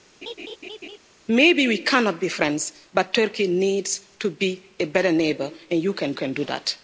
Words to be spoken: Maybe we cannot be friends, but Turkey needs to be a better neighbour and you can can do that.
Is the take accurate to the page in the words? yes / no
yes